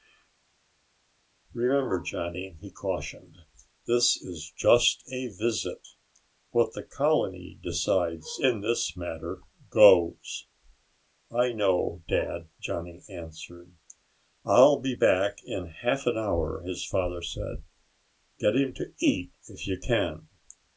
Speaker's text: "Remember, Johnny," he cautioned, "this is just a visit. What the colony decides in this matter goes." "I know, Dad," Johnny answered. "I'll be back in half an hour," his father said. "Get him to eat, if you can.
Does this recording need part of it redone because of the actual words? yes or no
no